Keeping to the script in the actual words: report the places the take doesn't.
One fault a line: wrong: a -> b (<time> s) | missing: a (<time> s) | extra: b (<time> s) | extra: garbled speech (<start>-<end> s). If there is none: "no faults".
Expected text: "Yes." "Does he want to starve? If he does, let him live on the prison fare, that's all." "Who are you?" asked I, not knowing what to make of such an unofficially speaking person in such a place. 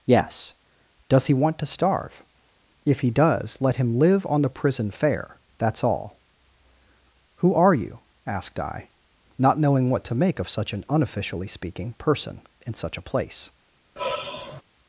no faults